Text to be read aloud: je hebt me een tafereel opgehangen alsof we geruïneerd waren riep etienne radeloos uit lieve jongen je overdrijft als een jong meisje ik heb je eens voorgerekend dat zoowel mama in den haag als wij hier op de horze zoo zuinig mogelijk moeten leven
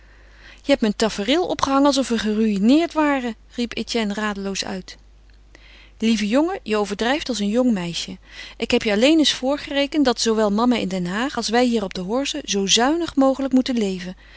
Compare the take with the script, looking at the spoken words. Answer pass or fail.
fail